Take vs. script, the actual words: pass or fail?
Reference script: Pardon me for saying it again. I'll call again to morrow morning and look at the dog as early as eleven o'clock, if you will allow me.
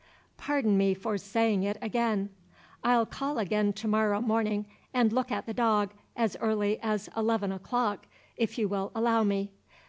pass